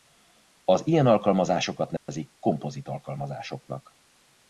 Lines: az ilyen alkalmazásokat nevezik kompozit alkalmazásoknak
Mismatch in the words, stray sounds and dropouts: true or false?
true